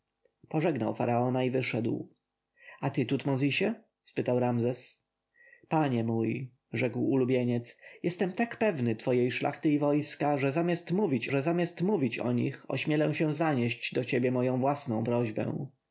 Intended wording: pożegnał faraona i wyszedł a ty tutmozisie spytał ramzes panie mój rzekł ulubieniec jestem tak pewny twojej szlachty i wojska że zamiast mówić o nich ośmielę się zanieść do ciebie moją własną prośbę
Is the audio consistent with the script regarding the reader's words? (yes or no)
no